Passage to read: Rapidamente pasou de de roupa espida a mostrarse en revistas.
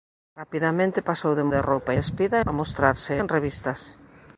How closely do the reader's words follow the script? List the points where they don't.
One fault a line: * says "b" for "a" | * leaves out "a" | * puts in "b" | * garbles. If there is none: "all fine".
all fine